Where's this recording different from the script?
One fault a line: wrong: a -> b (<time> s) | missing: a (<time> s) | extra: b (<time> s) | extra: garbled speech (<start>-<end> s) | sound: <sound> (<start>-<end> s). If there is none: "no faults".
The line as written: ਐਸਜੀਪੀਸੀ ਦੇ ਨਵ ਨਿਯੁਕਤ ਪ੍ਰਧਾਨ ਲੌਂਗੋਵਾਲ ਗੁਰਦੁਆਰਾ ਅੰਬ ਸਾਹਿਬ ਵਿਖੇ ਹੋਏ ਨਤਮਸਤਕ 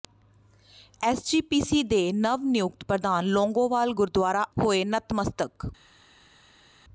missing: ਅੰਬ ਸਾਹਿਬ ਵਿਖੇ (4.4 s)